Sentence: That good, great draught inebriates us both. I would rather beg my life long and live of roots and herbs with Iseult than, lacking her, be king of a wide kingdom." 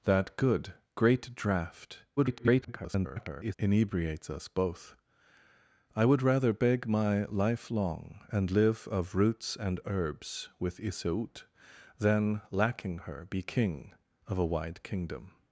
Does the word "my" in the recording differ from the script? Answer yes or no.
no